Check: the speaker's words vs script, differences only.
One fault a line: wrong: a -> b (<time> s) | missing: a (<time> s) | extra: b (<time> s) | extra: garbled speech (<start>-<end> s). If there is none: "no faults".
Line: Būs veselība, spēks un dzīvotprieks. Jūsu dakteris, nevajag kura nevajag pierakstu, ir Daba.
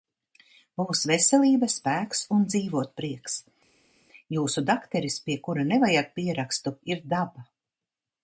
wrong: nevajag -> pie (5.3 s)